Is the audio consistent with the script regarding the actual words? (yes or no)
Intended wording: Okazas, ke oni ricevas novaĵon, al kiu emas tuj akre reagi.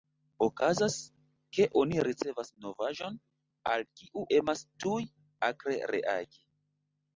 yes